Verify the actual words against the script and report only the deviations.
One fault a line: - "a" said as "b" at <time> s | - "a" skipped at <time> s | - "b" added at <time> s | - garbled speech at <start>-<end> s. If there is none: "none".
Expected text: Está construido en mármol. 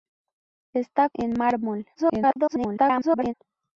- "construido" skipped at 1.1 s
- garbled speech at 1.9-3.3 s